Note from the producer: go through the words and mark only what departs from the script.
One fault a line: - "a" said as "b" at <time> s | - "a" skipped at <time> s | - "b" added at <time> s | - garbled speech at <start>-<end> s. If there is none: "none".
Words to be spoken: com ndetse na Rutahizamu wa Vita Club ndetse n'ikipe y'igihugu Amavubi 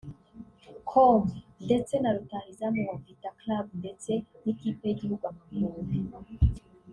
none